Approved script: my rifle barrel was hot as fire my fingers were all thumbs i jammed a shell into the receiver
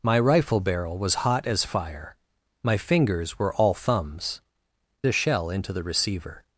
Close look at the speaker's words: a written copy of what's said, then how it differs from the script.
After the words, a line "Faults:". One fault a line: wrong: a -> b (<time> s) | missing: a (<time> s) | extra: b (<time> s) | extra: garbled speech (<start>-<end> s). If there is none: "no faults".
my rifle barrel was hot as fire my fingers were all thumbs a shell into the receiver
Faults:
missing: i jammed (4.4 s)